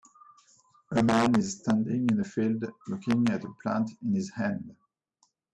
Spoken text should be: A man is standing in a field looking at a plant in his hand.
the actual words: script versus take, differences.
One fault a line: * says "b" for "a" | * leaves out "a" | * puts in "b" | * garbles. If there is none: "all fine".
all fine